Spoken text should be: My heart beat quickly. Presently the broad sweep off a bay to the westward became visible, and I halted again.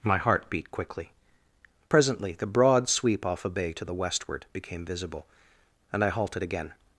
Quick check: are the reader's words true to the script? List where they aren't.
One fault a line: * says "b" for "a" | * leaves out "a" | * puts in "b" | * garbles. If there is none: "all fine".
all fine